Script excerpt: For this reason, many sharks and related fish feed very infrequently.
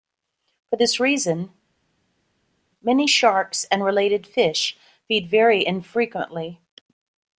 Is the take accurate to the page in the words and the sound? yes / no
yes